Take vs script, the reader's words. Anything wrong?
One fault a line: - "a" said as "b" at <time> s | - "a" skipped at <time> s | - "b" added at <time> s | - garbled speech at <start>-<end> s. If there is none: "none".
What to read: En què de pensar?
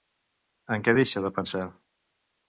- "deixa" added at 1.0 s